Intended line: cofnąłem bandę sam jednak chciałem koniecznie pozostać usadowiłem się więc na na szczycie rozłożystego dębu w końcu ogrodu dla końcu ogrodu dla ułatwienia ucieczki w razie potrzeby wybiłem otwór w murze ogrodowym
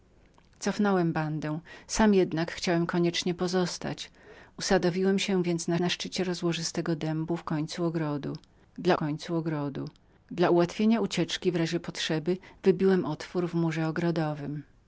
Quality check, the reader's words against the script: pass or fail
pass